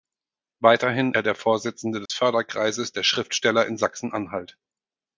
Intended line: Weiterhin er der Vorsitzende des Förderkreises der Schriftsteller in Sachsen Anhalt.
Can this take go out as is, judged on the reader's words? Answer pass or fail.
pass